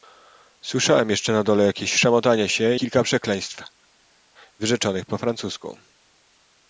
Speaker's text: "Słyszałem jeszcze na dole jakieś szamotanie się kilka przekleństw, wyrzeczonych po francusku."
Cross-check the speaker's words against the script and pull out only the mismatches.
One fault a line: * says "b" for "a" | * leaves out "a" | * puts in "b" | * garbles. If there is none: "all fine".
all fine